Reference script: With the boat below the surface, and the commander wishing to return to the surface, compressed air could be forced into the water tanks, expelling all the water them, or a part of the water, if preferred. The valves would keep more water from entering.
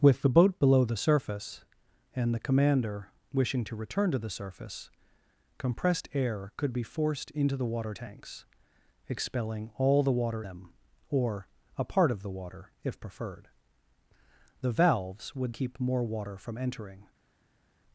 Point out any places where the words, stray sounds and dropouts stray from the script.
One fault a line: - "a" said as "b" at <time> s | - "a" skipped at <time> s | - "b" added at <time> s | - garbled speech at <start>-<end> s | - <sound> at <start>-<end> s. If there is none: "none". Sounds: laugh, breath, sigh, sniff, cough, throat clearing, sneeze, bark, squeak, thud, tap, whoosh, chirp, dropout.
none